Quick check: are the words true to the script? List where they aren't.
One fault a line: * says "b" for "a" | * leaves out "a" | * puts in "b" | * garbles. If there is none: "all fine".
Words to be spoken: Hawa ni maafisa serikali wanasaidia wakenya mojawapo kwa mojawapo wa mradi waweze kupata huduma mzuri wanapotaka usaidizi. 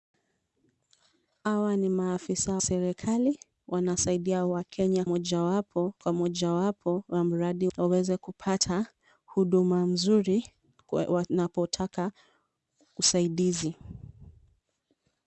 all fine